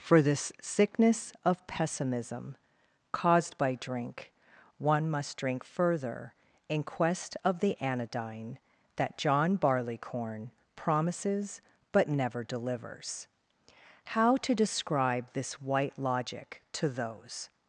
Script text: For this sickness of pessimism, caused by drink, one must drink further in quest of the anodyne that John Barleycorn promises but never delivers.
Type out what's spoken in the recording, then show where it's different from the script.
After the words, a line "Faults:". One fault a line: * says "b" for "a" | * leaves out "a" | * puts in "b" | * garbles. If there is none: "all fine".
For this sickness of pessimism, caused by drink, one must drink further in quest of the anodyne that John Barleycorn promises but never delivers. How to describe this White Logic to those
Faults:
* puts in "How to describe this White Logic to those"